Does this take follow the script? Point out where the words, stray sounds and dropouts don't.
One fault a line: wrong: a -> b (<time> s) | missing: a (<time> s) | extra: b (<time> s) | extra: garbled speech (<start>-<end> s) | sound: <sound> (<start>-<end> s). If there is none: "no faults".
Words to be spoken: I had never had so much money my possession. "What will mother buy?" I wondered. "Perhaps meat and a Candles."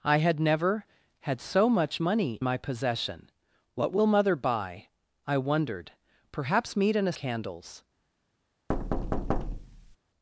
sound: thud (8.7-10.0 s)